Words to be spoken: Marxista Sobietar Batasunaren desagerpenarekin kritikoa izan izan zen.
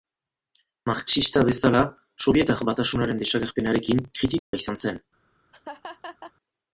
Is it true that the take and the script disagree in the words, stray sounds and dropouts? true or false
true